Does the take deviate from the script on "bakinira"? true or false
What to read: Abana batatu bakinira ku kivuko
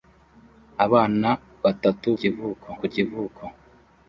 true